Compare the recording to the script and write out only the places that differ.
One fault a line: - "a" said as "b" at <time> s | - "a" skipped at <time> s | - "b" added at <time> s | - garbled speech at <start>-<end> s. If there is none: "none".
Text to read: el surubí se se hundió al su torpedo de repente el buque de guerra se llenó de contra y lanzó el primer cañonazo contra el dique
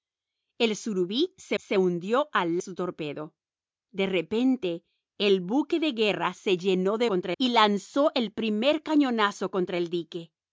none